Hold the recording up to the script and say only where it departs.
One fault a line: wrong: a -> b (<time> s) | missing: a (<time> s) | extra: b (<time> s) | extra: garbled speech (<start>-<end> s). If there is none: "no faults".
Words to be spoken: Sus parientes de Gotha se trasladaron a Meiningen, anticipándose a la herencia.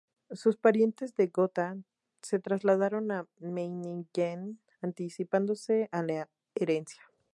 no faults